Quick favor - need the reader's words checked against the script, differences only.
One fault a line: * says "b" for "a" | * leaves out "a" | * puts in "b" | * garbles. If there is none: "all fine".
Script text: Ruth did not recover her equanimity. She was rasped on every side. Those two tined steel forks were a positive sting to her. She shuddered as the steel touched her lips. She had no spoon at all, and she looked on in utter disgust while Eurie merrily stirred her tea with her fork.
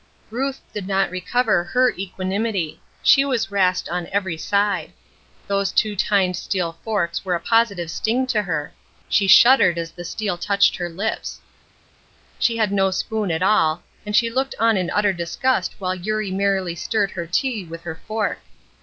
all fine